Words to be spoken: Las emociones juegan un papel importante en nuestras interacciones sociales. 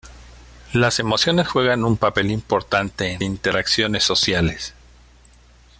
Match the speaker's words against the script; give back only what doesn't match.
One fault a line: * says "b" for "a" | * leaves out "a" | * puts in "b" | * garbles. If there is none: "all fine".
* leaves out "nuestras"